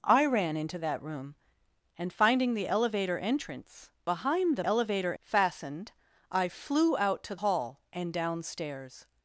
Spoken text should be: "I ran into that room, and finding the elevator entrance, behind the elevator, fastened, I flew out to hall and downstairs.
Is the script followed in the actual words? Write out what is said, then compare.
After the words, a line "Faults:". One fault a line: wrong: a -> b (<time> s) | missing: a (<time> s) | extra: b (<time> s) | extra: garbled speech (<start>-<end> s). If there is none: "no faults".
"I ran into that room, and finding the elevator entrance, behind the elevator, fastened, I flew out to hall and downstairs.
Faults:
no faults